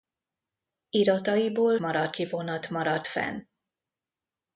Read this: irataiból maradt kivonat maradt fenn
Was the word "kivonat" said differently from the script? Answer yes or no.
no